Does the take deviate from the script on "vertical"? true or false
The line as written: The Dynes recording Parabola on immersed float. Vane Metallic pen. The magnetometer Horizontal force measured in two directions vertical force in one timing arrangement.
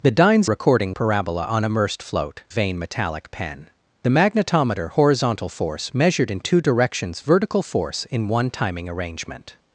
false